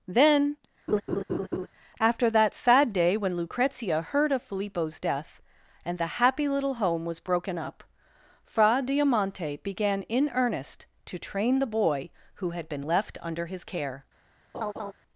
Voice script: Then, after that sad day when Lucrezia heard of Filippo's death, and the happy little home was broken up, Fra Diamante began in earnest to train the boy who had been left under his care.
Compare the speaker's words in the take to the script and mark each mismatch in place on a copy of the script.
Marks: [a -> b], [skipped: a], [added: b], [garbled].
Then, after that sad day when Lucrezia heard of Filippo's death, and the happy little home was broken up, Fra Diamante began in earnest to train the boy who had been left under his care.